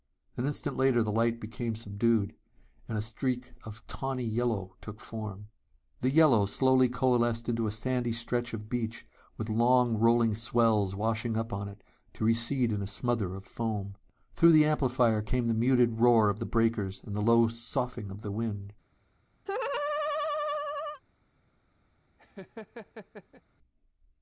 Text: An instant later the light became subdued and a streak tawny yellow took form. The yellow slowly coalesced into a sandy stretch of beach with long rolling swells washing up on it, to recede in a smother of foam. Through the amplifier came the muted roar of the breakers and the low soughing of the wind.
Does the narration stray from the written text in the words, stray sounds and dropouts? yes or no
yes